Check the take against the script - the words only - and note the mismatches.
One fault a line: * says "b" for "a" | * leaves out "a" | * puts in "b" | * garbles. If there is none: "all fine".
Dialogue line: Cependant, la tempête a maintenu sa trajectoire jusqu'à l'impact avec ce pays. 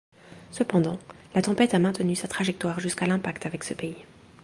all fine